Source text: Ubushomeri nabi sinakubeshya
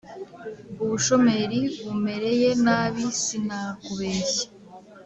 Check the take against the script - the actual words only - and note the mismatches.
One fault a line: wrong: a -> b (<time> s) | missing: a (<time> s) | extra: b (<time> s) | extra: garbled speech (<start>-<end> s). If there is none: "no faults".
extra: bumereye (1.9 s)